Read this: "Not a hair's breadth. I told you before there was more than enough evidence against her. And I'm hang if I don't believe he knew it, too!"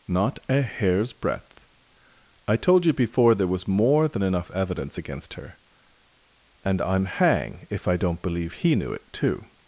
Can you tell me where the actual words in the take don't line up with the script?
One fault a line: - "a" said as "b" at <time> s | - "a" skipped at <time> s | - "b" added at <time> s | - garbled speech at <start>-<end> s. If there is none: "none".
none